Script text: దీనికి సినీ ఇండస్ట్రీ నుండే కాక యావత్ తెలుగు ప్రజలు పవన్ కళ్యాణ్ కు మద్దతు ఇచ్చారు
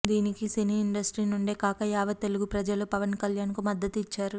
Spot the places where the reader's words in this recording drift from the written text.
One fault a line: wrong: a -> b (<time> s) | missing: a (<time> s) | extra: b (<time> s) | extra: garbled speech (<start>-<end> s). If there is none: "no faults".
no faults